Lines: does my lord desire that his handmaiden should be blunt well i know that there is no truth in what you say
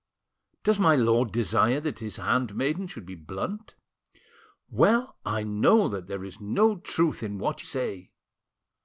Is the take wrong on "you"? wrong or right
wrong